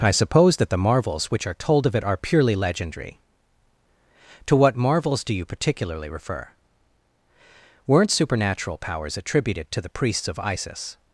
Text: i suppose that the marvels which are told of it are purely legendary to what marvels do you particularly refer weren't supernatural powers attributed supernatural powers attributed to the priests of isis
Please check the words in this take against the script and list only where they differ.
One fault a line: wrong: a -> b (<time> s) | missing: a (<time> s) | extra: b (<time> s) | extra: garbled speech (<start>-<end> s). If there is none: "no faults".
missing: supernatural powers attributed (9.7 s)